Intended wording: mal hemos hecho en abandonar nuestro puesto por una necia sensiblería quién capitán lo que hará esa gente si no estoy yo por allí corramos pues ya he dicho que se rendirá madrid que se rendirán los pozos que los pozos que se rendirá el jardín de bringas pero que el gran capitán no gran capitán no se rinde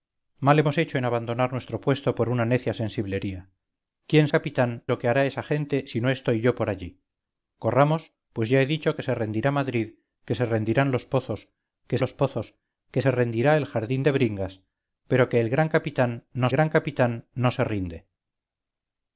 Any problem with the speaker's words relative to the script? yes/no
no